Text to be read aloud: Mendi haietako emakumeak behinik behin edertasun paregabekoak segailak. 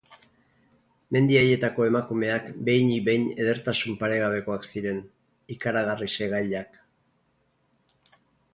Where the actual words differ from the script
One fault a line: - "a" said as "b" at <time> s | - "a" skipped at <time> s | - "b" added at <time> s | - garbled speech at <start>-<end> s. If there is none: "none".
- "ziren ikaragarri" added at 4.7 s